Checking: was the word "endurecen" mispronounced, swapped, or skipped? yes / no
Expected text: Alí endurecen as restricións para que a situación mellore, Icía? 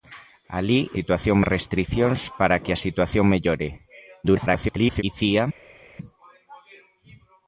yes